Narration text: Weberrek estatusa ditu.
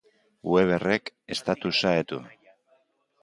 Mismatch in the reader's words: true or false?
false